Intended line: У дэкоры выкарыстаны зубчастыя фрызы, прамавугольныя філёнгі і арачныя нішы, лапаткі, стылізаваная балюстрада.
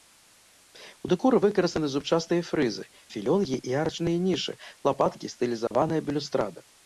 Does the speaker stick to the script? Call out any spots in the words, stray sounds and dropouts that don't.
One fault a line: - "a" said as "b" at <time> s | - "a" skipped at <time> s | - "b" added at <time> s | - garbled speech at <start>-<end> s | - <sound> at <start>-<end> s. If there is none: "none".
- "прамавугольныя" skipped at 2.9 s
- dropout at 5.7-5.7 s